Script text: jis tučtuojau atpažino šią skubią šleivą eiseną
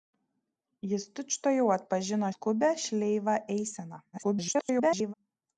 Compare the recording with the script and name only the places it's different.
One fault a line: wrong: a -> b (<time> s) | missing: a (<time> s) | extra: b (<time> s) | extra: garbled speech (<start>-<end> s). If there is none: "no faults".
missing: šią (2.3 s)
extra: garbled speech (4.1-5.1 s)